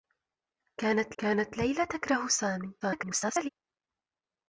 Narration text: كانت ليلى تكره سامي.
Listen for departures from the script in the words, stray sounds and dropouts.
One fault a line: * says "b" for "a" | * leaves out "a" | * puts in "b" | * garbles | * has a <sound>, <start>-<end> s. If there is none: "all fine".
* puts in "كانت"
* garbles